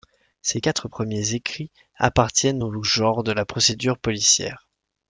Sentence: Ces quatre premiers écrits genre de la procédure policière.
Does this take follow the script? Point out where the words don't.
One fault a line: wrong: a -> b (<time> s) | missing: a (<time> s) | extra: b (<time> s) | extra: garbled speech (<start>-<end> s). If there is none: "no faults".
extra: appartiennent au (2.0 s)